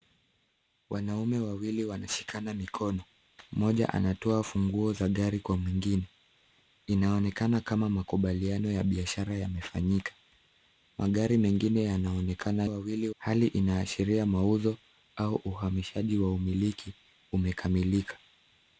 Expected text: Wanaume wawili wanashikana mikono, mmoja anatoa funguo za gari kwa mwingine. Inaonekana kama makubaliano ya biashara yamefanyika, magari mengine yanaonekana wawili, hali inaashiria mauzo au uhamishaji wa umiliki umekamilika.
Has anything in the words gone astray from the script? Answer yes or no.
no